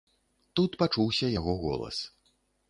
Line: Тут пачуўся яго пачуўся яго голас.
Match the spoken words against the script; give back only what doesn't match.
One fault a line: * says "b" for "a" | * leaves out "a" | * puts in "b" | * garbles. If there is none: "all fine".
* leaves out "пачуўся яго"